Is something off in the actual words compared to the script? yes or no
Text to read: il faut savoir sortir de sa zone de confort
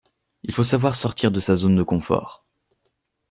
no